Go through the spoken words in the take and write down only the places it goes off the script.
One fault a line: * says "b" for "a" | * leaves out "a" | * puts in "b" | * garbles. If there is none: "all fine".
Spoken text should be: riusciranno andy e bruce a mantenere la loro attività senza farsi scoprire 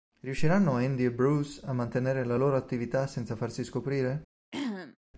all fine